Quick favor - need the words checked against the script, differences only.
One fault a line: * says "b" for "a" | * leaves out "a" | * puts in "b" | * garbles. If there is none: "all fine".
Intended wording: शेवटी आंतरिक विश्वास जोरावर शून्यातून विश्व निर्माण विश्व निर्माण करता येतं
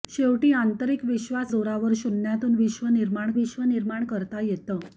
all fine